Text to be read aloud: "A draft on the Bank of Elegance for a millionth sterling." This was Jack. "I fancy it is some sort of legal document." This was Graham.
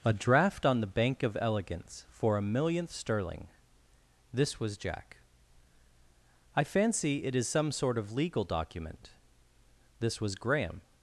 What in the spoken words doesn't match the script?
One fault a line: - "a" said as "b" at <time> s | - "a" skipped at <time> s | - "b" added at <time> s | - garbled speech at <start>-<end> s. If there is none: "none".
none